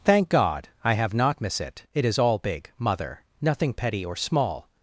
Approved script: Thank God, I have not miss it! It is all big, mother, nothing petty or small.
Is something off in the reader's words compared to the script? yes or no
no